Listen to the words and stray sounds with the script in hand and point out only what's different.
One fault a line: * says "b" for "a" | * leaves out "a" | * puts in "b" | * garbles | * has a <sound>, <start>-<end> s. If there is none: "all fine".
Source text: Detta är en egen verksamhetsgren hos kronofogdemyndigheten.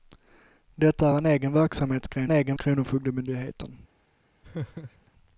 * says "egen" for "hos"
* has a laugh, 4.4-5.1 s